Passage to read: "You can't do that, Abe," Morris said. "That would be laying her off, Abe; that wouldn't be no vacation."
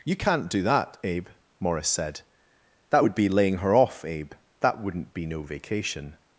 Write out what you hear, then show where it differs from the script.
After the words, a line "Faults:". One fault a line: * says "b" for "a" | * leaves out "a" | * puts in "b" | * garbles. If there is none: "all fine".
"You can't do that, Abe," Morris said. "That would be laying her off, Abe; that wouldn't be no vacation."
Faults:
all fine